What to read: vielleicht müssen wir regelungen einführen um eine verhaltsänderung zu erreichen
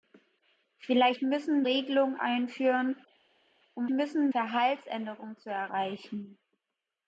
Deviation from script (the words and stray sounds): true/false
true